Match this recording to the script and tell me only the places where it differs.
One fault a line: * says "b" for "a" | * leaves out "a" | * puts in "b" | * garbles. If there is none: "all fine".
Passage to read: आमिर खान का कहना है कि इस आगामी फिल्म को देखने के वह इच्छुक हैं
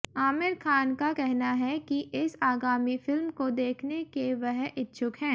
all fine